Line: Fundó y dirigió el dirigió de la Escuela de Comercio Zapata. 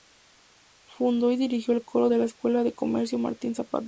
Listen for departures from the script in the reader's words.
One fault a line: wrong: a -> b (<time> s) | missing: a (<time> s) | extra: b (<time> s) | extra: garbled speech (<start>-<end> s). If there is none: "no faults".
wrong: dirigió -> coro (1.9 s)
extra: Martín (3.2 s)